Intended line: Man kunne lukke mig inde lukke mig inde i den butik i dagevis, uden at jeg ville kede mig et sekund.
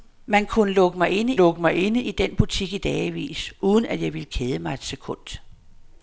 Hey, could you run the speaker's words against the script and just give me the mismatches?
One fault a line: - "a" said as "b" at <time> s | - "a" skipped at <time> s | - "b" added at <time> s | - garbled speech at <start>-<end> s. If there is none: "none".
none